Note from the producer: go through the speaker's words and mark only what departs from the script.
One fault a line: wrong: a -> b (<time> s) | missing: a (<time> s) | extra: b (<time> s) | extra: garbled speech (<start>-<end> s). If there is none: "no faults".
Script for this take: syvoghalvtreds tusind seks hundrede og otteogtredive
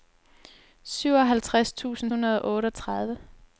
missing: seks (2.1 s)